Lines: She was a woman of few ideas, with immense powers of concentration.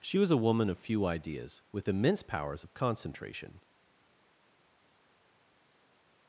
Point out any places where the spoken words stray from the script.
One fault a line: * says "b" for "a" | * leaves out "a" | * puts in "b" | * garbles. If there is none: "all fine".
all fine